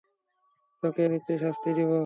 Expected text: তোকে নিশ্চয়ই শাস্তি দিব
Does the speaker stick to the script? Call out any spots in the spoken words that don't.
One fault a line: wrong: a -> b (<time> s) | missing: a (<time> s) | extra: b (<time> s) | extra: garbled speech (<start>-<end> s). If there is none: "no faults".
no faults